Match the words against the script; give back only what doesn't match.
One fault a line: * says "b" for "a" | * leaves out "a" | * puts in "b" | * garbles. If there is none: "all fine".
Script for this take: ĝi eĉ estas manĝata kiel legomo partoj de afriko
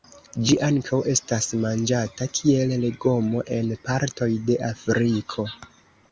* says "ankaŭ" for "eĉ"
* puts in "en"